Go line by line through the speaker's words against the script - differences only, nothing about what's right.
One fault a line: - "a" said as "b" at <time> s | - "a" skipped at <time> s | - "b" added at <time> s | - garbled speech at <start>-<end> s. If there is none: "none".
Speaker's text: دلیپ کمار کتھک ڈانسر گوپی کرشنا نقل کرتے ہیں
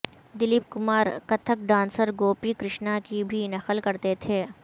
- "کی بھی" added at 3.0 s
- "ہیں" said as "تھے" at 4.2 s